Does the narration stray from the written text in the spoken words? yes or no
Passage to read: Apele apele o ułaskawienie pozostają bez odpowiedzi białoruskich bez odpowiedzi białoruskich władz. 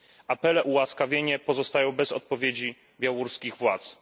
yes